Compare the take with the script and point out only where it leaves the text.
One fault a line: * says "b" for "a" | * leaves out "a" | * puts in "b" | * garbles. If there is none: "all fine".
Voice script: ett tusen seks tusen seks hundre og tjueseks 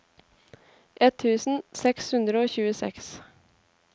* leaves out "tusen seks"